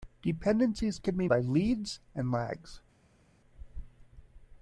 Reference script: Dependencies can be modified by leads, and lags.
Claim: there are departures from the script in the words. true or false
true